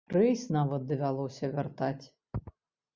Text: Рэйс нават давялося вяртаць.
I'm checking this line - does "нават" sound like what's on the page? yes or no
yes